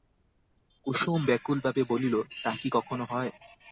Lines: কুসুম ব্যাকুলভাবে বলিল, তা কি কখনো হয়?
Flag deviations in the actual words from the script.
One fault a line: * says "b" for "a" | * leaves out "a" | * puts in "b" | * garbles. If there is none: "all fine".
all fine